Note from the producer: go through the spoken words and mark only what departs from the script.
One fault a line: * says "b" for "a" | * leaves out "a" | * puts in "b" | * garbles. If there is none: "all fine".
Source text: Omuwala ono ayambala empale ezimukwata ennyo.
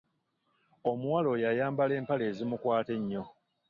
* says "oyo" for "ono"